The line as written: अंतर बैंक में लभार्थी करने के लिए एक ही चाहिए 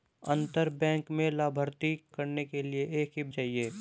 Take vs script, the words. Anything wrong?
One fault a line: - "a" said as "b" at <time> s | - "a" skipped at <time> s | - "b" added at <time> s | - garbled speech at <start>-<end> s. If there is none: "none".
none